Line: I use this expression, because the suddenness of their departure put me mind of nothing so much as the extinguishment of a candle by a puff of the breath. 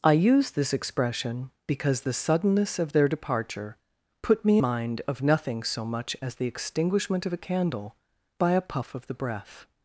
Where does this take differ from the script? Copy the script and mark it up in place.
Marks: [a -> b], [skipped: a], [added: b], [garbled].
I use this expression, because the suddenness of their departure put me mind of nothing so much as the extinguishment of a candle by a puff of the breath.